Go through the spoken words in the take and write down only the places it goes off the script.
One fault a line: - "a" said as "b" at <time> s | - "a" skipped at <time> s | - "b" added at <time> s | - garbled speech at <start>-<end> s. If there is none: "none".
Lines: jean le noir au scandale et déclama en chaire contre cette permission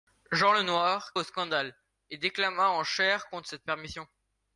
none